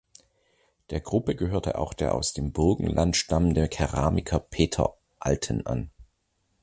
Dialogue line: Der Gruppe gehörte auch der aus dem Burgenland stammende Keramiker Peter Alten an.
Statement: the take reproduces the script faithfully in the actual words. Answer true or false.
true